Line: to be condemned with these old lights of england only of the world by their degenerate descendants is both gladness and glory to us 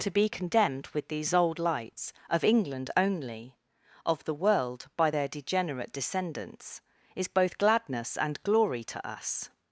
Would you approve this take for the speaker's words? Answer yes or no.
yes